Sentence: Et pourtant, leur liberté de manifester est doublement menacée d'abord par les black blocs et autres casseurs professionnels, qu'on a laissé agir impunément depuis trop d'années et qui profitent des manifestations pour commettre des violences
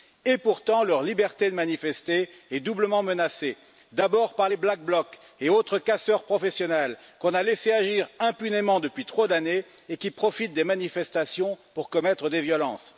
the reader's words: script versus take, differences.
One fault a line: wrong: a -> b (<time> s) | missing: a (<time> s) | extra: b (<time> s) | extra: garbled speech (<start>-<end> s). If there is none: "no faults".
no faults